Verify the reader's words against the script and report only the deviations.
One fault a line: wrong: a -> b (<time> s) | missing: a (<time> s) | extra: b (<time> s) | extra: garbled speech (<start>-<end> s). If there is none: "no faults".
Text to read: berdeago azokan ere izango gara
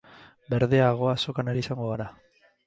no faults